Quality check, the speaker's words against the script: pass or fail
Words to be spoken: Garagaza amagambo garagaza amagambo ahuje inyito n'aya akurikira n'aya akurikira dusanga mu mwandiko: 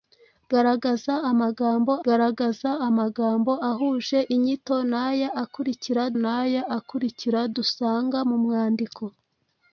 pass